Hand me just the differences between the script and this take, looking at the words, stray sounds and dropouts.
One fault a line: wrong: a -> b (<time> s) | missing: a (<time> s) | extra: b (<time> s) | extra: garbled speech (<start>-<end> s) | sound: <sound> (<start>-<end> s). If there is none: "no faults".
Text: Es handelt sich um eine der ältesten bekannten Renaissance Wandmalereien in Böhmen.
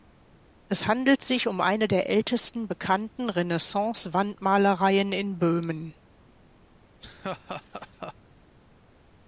sound: laugh (7.0-8.1 s)